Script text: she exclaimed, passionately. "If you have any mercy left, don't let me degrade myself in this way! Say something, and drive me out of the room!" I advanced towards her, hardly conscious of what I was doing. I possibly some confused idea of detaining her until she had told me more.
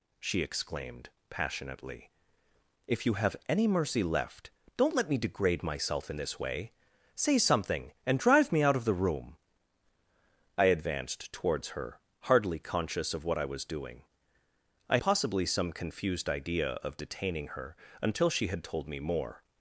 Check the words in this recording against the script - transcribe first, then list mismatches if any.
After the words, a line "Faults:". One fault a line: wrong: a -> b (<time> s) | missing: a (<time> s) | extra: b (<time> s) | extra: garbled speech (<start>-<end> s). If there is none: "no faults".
she exclaimed, passionately. "If you have any mercy left, don't let me degrade myself in this way! Say something, and drive me out of the room!" I advanced towards her, hardly conscious of what I was doing. I possibly some confused idea of detaining her until she had told me more.
Faults:
no faults